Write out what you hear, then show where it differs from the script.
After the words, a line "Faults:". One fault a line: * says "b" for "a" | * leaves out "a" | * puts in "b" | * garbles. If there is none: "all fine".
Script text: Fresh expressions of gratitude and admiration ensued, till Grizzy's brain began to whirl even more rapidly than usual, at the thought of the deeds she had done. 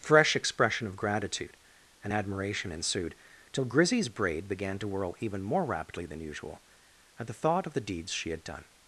Fresh expression of gratitude and admiration ensued, till Grizzy's braid began to whirl even more rapidly than usual, at the thought of the deeds she had done.
Faults:
* says "expression" for "expressions"
* says "braid" for "brain"